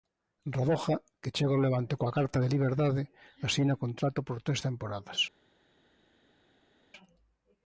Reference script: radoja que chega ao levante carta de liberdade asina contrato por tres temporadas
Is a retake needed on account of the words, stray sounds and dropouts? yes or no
yes